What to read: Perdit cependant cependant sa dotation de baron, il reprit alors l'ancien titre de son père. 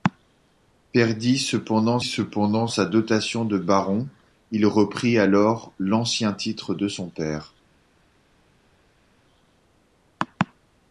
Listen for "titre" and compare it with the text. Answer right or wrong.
right